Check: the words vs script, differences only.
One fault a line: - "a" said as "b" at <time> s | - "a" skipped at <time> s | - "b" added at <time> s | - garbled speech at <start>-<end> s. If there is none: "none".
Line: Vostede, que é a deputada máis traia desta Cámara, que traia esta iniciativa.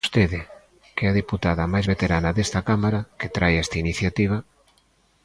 - "traia" said as "veterana" at 1.9 s